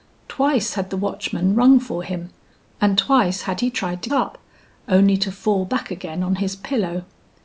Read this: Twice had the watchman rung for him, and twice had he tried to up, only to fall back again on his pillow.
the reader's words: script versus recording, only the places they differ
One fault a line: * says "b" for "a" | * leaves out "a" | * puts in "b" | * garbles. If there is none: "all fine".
all fine